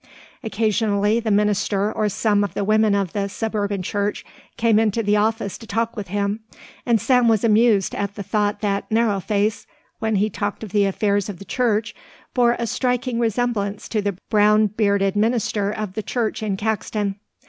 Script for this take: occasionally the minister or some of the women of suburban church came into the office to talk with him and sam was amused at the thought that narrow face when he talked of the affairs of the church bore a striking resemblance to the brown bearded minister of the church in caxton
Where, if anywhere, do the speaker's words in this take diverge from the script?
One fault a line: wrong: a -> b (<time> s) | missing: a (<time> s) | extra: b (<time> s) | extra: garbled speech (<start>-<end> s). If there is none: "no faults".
extra: the (3.1 s)